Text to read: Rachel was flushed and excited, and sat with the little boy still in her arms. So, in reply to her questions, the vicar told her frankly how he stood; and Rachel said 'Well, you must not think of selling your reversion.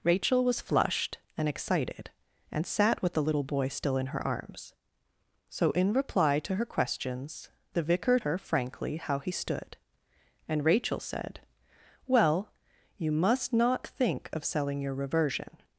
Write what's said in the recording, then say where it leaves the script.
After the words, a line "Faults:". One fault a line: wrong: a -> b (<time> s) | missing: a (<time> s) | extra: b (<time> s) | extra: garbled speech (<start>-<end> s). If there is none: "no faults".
Rachel was flushed and excited, and sat with the little boy still in her arms. So, in reply to her questions, the vicar her frankly how he stood; and Rachel said 'Well, you must not think of selling your reversion.
Faults:
missing: told (8.2 s)